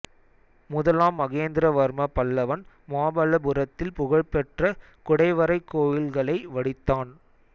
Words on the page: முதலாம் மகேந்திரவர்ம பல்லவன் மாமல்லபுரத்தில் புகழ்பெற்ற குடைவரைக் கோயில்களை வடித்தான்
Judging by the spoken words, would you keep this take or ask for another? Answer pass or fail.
pass